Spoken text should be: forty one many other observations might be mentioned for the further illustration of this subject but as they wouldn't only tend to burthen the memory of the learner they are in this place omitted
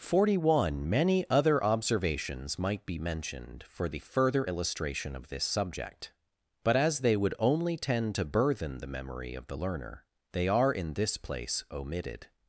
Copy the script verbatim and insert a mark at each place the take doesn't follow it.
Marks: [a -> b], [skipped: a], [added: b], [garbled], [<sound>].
forty one many other observations might be mentioned for the further illustration of this subject but as they [wouldn't -> would] only tend to burthen the memory of the learner they are in this place omitted